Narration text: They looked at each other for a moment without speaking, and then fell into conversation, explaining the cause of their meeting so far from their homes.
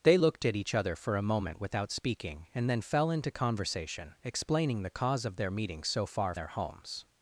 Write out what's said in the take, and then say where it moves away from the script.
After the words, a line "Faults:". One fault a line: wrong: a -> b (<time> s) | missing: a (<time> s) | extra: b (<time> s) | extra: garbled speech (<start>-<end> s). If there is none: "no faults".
They looked at each other for a moment without speaking, and then fell into conversation, explaining the cause of their meeting so far their homes.
Faults:
missing: from (6.3 s)